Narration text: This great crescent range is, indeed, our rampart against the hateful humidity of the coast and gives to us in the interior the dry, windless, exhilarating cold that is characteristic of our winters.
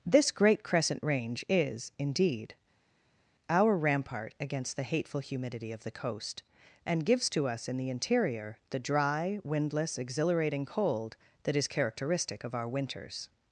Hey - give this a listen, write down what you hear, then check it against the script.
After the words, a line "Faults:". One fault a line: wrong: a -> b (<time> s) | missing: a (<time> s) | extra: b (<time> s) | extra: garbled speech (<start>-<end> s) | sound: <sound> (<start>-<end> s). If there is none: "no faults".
This great crescent range is, indeed, our rampart against the hateful humidity of the coast and gives to us in the interior the dry, windless, exhilarating cold that is characteristic of our winters.
Faults:
no faults